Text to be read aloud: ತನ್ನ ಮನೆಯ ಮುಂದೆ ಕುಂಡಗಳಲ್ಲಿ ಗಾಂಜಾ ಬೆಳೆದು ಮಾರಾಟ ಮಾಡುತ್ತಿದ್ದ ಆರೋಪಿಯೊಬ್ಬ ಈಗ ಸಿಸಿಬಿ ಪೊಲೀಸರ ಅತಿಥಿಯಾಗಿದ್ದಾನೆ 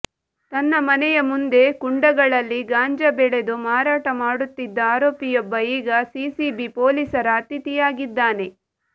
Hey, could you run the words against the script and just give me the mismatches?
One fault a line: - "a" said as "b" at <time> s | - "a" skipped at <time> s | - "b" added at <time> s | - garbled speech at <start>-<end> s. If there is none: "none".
none